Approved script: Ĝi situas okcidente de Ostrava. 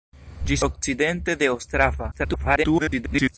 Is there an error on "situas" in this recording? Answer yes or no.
yes